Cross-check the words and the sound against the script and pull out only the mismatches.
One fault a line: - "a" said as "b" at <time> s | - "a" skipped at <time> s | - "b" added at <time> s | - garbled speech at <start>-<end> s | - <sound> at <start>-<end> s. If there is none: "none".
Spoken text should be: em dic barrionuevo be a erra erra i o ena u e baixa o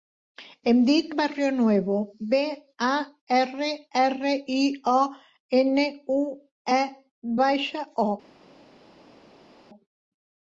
none